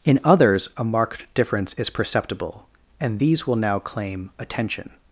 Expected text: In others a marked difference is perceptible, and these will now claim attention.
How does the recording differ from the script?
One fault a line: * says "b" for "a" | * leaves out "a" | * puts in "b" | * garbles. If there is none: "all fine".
all fine